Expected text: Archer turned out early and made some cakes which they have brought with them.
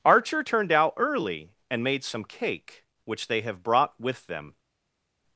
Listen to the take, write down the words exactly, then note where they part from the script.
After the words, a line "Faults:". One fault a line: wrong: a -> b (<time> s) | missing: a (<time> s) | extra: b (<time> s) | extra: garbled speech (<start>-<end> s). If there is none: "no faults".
Archer turned out early and made some cake which they have brought with them.
Faults:
wrong: cakes -> cake (2.2 s)